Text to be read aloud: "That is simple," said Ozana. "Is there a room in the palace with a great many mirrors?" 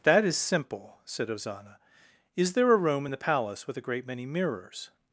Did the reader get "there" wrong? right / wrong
right